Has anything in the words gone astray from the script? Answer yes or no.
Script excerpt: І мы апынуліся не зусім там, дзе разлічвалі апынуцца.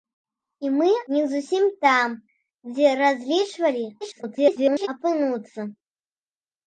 yes